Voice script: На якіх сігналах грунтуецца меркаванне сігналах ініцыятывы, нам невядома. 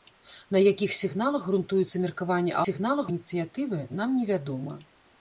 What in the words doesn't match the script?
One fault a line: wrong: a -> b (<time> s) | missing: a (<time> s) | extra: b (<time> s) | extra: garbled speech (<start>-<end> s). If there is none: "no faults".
no faults